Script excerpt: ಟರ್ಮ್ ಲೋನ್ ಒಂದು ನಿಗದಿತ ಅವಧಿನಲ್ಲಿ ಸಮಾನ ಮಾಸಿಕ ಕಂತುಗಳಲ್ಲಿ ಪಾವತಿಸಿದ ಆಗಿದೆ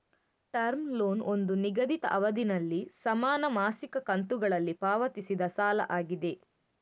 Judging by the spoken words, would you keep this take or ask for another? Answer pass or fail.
fail